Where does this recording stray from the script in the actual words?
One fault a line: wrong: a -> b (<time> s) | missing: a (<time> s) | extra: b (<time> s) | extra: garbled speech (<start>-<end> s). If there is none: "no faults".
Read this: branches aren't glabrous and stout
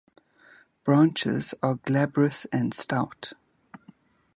wrong: aren't -> are (1.6 s)